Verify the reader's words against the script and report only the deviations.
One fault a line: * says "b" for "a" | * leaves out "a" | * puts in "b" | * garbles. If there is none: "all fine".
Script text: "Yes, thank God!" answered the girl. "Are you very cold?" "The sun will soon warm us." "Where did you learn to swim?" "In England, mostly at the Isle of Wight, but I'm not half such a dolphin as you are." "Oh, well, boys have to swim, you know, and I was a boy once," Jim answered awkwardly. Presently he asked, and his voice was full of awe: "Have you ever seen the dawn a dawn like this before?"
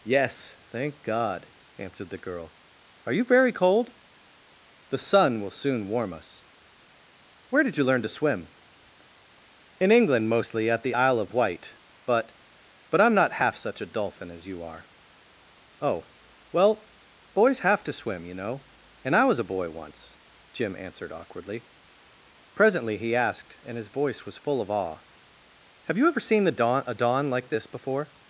* puts in "but"